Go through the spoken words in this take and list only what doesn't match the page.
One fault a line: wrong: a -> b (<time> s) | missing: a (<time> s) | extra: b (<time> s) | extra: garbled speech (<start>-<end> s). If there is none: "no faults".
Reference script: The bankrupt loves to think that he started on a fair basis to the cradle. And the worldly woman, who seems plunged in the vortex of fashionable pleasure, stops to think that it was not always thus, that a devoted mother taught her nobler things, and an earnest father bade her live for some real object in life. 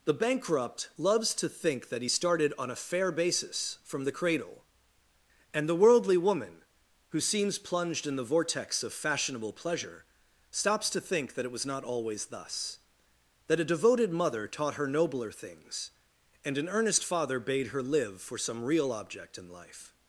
wrong: to -> from (3.8 s)